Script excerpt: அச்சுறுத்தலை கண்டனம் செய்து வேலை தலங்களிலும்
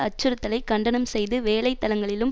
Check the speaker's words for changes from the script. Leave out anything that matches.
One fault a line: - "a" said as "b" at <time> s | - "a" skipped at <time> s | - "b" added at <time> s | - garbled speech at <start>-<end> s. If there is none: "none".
none